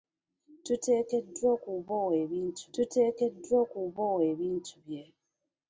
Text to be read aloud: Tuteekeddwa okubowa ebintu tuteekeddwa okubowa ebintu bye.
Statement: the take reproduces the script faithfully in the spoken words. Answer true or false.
true